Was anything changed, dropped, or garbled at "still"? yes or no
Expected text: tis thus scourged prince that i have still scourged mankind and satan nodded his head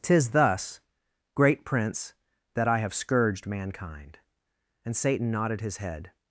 yes